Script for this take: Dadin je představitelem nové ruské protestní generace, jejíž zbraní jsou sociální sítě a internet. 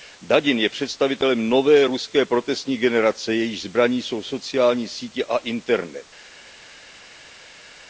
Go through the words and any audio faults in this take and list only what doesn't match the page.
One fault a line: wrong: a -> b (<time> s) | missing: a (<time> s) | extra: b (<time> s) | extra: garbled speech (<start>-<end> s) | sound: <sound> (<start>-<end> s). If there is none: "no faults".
no faults